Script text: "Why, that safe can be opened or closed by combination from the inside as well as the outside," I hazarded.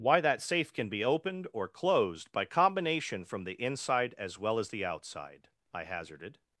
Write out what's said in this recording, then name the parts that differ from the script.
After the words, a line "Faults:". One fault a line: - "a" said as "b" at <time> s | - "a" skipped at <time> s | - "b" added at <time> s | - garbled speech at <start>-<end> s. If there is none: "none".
"Why, that safe can be opened or closed by combination from the inside as well as the outside," I hazarded.
Faults:
none